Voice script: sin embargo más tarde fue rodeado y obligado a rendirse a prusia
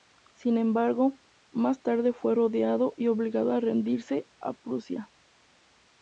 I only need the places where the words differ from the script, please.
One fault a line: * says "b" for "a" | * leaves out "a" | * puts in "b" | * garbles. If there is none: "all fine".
all fine